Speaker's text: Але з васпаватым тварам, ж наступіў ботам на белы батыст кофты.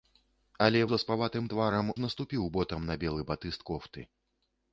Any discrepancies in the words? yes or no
no